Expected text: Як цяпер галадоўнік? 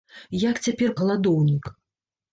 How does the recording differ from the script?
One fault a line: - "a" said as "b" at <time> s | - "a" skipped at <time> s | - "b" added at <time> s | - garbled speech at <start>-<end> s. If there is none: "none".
none